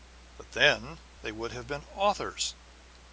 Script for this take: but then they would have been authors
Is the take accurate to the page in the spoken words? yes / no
yes